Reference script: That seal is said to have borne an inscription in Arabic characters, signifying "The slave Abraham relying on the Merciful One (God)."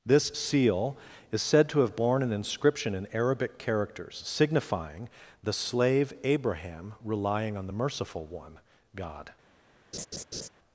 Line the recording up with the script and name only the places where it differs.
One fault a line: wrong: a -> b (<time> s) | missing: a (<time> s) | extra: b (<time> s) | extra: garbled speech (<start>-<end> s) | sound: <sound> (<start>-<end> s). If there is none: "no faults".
wrong: That -> This (0.1 s)
sound: laugh (9.9-10.5 s)